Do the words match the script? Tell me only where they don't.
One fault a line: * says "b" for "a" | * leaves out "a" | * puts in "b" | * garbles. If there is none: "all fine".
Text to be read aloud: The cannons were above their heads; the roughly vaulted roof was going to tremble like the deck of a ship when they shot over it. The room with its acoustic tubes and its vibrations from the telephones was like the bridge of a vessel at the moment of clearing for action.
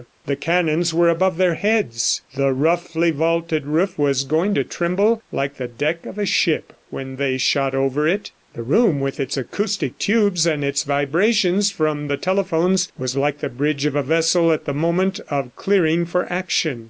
all fine